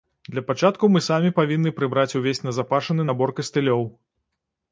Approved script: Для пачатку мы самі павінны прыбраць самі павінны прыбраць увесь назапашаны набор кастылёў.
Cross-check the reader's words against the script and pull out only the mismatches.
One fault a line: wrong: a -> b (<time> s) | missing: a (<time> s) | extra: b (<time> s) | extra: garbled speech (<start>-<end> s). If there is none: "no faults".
missing: самі павінны прыбраць (2.2 s)